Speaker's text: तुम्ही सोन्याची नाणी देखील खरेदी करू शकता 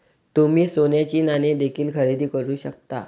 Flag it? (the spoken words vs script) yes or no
no